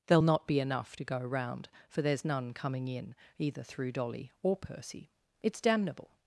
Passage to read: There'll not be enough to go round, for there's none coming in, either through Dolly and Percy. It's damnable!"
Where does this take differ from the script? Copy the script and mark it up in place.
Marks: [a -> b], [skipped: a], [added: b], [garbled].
There'll not be enough to go round, for there's none coming in, either through Dolly [and -> or] Percy. It's damnable!"